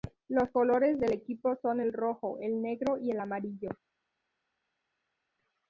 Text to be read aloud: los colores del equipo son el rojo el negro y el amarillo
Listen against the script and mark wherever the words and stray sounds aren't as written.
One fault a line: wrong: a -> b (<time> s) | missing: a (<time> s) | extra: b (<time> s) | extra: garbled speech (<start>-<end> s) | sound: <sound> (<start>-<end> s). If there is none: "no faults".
no faults